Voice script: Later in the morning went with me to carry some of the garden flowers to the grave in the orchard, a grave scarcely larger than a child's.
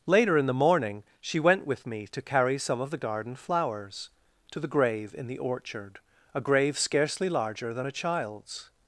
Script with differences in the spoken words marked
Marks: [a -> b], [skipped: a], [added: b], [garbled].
Later in the morning [added: she] went with me to carry some of the garden flowers to the grave in the orchard, a grave scarcely larger than a child's.